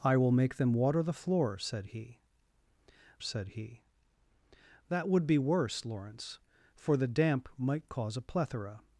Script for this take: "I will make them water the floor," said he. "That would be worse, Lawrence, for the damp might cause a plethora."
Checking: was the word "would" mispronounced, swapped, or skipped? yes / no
no